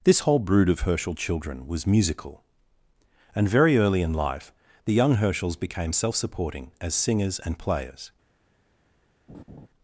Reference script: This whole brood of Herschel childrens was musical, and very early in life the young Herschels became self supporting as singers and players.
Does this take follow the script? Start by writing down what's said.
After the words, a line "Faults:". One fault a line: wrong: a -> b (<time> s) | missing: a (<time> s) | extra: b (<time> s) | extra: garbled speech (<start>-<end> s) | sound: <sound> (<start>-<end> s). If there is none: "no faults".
This whole brood of Herschel children was musical, and very early in life the young Herschels became self supporting as singers and players.
Faults:
wrong: childrens -> children (1.1 s)
sound: laugh (9.3-9.7 s)